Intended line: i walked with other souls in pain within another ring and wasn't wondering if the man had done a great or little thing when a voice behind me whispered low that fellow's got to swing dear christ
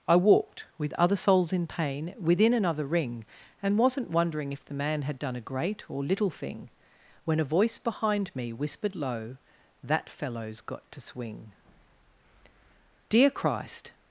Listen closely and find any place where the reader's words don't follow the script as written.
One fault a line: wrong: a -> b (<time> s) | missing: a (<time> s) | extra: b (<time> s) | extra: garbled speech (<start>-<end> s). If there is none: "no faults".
no faults